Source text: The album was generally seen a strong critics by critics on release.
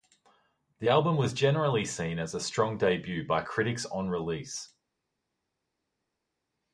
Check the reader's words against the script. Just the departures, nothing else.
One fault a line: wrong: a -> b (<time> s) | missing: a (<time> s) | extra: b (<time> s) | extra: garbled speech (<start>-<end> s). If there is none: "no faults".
extra: as (2.2 s)
wrong: critics -> debut (2.8 s)